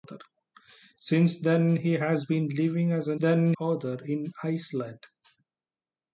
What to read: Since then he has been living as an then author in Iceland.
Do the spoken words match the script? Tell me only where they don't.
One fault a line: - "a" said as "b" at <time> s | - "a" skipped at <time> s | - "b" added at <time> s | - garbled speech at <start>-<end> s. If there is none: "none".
none